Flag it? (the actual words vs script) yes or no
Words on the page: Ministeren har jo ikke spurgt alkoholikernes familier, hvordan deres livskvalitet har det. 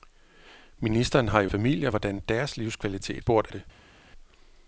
yes